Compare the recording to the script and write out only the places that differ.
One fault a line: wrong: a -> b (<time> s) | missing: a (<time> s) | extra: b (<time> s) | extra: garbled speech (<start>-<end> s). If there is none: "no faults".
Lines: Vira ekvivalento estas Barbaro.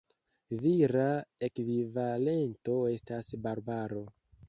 no faults